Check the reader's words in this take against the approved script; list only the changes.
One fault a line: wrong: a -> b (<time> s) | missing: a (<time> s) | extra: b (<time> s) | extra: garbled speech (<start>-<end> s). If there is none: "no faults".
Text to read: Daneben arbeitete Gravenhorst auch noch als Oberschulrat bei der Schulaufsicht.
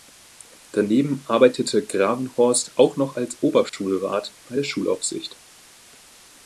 no faults